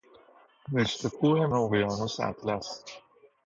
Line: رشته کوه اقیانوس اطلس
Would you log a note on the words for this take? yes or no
no